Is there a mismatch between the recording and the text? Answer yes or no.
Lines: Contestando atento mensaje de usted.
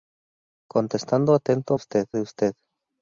yes